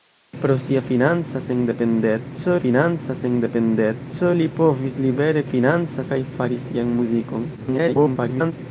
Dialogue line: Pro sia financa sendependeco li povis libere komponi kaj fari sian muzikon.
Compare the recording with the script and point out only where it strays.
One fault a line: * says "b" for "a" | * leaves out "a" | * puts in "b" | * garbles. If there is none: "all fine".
* puts in "financa sendependeco"
* says "financa" for "komponi"
* garbles